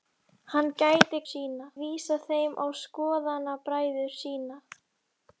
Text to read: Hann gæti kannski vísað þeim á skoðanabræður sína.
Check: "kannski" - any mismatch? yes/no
yes